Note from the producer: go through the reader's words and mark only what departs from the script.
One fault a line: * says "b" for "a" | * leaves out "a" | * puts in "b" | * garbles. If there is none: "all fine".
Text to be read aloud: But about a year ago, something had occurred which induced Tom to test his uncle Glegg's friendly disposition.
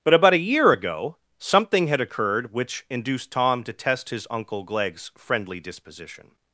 all fine